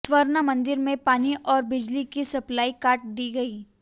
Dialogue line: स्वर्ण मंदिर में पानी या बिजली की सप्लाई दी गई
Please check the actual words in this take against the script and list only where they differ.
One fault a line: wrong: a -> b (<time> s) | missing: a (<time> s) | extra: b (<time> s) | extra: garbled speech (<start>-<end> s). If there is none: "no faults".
wrong: या -> और (1.4 s)
extra: काट (2.8 s)